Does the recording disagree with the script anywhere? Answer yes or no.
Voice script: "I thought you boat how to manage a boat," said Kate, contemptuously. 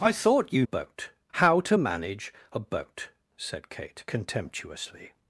no